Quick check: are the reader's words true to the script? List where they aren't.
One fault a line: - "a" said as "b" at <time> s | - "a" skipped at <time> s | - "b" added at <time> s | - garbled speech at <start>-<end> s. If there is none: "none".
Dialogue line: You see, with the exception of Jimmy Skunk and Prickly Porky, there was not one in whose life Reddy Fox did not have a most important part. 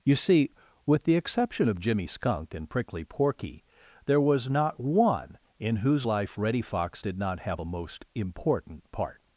none